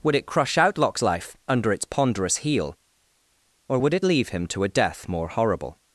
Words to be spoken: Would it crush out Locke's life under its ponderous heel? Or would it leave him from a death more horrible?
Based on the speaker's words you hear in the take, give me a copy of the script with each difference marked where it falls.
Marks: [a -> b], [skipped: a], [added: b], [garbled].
Would it crush out Locke's life under its ponderous heel? Or would it leave him [from -> to] a death more horrible?